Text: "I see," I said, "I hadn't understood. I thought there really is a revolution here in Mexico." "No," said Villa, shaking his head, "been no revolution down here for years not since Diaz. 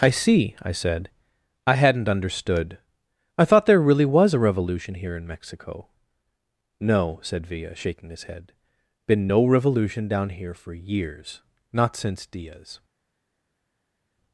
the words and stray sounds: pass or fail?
fail